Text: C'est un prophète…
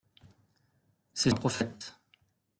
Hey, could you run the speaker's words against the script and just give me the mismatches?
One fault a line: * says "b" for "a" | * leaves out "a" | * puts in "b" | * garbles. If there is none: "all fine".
all fine